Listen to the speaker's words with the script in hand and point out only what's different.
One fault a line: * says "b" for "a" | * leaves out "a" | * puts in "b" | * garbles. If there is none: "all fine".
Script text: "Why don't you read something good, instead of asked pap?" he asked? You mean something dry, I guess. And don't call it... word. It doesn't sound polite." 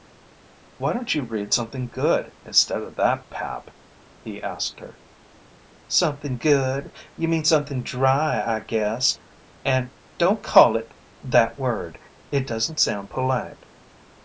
* says "that" for "asked"
* puts in "her Something good"
* puts in "that"